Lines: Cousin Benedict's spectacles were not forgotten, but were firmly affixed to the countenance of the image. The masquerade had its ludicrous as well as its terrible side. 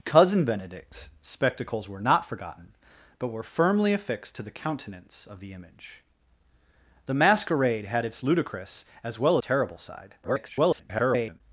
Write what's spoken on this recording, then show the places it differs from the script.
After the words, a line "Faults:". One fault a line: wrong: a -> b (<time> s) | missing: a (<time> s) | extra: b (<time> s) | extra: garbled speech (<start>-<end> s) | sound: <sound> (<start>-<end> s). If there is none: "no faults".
Cousin Benedict's spectacles were not forgotten, but were firmly affixed to the countenance of the image. The masquerade had its ludicrous as well terrible side. [garbled]
Faults:
missing: as its (9.4 s)
extra: garbled speech (10.2-11.4 s)